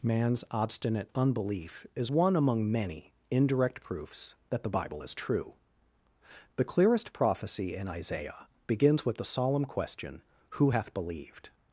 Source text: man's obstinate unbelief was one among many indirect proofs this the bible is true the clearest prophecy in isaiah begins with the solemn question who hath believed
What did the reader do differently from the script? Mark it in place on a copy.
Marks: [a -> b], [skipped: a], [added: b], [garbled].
man's obstinate unbelief [was -> is] one among many indirect proofs [this -> that] the bible is true the clearest prophecy in isaiah begins with the solemn question who hath believed